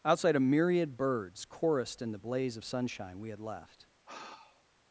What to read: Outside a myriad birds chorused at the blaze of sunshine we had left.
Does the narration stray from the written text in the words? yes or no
yes